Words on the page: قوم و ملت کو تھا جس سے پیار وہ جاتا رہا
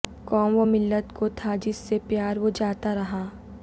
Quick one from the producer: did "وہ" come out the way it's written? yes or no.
yes